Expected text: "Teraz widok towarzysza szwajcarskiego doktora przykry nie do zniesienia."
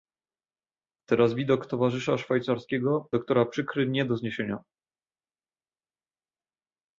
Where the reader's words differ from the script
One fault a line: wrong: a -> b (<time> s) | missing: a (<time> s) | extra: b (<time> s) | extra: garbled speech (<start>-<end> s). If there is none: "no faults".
no faults